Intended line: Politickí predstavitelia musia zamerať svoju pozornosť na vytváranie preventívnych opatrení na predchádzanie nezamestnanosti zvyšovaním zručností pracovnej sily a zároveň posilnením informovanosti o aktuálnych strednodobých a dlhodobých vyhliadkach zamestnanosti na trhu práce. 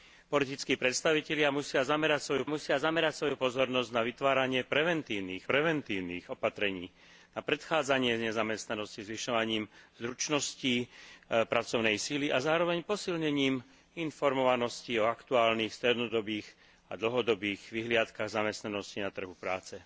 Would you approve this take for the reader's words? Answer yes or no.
no